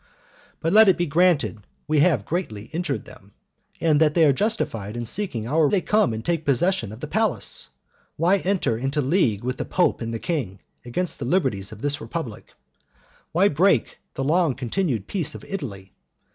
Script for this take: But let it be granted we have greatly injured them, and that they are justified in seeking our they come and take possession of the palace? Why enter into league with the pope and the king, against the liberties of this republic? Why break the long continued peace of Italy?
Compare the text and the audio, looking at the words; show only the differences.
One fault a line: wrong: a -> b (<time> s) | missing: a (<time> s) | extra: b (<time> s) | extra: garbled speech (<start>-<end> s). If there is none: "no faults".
no faults